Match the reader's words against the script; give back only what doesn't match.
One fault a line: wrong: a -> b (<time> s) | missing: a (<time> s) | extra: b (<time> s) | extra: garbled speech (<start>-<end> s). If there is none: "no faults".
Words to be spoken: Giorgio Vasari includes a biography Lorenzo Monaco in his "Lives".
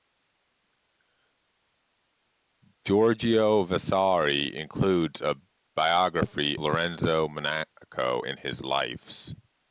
no faults